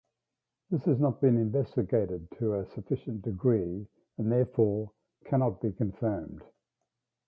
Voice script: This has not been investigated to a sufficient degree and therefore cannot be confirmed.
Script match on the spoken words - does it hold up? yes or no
yes